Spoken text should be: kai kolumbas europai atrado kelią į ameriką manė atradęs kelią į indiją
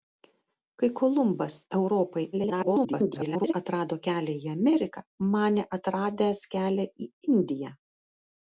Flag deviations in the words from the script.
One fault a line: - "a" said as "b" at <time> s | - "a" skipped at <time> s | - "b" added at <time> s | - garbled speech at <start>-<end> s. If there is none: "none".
- garbled speech at 2.3-3.5 s